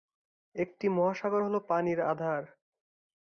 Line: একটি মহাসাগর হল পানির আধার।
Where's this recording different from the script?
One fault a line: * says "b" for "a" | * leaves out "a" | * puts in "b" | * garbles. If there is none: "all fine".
all fine